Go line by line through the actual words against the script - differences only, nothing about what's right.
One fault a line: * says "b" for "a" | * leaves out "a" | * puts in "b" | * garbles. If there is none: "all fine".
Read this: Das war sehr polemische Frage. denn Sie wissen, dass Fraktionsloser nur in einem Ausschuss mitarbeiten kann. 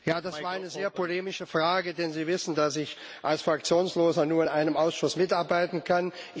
* puts in "eine"
* puts in "ich als"